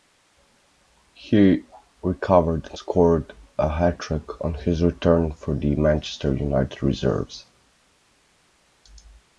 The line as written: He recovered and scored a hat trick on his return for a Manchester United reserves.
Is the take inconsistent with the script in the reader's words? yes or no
yes